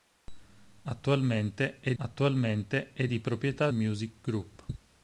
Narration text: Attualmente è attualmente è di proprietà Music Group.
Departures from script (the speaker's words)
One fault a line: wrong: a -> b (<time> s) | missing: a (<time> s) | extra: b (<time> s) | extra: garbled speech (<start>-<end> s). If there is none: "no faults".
no faults